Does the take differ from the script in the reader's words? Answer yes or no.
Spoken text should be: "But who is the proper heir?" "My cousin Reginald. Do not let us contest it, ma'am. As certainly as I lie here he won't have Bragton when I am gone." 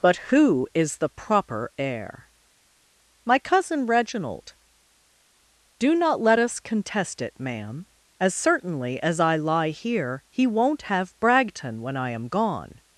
no